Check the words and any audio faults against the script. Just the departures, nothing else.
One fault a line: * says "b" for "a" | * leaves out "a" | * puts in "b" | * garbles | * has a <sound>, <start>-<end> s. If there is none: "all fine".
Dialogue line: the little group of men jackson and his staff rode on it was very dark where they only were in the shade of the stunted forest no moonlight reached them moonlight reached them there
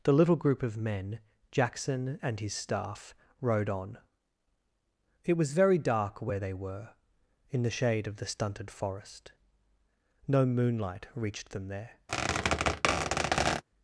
* leaves out "only"
* leaves out "moonlight reached them"
* has a squeak, 12.1-13.6 s